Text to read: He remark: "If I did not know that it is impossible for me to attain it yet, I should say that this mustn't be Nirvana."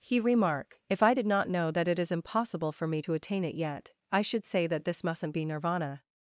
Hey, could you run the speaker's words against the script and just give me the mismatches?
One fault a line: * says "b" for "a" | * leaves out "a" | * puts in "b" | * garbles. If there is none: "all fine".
all fine